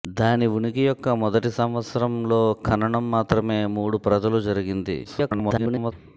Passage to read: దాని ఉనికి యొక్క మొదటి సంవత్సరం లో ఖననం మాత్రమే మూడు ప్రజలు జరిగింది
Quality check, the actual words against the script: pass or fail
fail